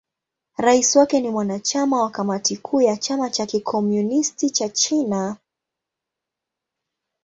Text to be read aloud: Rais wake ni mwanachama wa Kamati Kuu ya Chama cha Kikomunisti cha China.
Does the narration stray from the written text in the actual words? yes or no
no